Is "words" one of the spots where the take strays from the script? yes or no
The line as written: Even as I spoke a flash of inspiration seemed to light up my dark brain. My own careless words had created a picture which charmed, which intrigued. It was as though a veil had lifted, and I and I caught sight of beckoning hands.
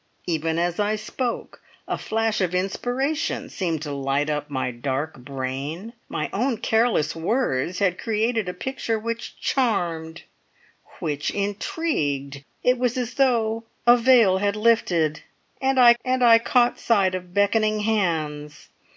no